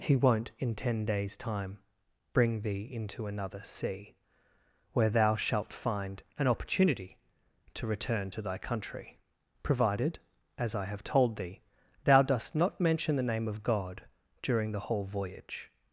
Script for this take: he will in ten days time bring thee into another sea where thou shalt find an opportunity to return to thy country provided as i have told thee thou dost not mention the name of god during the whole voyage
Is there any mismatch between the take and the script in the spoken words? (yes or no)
yes